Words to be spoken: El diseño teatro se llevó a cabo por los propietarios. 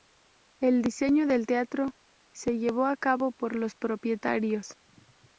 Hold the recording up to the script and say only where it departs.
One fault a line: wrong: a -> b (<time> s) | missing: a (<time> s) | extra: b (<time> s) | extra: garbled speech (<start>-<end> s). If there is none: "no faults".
extra: del (1.3 s)